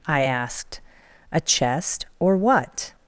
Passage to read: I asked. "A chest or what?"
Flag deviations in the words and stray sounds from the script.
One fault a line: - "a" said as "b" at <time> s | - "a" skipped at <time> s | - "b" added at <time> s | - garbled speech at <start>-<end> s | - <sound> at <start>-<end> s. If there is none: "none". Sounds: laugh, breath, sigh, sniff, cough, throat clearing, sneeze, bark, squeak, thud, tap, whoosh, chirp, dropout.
none